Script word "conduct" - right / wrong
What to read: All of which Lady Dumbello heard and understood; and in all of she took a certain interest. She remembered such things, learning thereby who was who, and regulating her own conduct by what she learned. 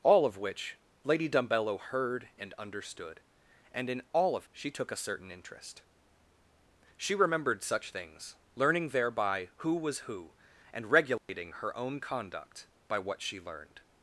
right